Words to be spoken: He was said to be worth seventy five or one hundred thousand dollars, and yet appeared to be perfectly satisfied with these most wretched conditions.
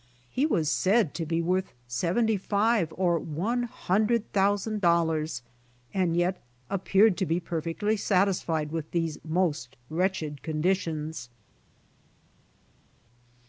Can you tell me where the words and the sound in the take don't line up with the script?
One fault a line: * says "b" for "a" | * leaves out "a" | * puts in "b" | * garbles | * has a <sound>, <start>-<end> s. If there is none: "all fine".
all fine